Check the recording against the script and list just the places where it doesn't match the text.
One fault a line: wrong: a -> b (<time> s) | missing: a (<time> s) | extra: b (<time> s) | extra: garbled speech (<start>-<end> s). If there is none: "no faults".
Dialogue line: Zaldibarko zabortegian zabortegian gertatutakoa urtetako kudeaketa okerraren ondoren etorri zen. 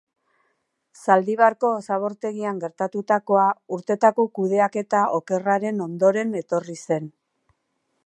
missing: zabortegian (2.6 s)